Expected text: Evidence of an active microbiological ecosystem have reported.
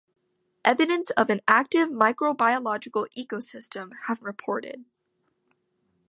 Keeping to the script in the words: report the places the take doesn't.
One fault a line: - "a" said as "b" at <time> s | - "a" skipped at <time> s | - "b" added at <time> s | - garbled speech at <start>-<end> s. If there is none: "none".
none